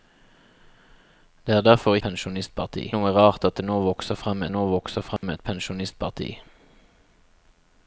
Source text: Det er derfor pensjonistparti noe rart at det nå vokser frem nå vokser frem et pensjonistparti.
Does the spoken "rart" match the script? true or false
true